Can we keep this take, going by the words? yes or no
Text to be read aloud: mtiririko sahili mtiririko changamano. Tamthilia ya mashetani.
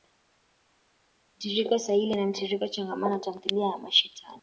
no